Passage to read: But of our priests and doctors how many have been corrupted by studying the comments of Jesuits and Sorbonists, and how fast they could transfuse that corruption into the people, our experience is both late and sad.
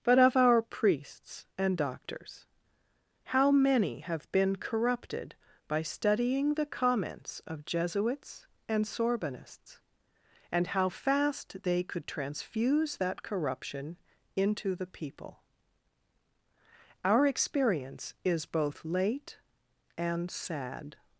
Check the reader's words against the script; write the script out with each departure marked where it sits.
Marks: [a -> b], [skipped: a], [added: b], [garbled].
But of our priests and doctors how many have been corrupted by studying the comments of Jesuits and Sorbonists, and how fast they could transfuse that corruption into the people, our experience is both late and sad.